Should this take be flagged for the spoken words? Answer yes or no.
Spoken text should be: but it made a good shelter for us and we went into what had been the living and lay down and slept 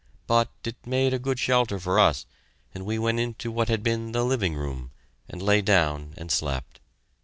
yes